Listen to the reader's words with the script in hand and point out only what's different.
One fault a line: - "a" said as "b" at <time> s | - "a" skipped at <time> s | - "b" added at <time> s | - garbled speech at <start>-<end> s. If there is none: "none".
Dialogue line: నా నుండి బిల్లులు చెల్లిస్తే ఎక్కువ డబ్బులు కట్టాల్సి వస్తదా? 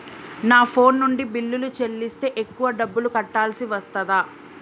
- "ఫోన్" added at 0.7 s